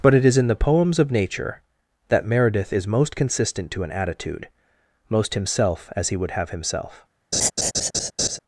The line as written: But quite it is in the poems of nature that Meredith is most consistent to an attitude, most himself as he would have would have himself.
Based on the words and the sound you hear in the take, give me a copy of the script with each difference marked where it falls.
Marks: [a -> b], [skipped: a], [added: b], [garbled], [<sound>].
But [skipped: quite] it is in the poems of nature that Meredith is most consistent to an attitude, most himself as he would have [skipped: would have] himself. [laugh]